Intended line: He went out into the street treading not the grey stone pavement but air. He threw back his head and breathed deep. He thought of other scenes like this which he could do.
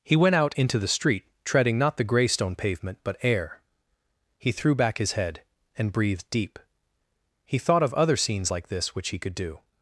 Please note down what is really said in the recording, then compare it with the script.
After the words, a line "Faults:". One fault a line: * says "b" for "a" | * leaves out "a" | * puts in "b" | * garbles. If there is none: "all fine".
He went out into the street treading not the grey stone pavement but air. He threw back his head and breathed deep. He thought of other scenes like this which he could do.
Faults:
all fine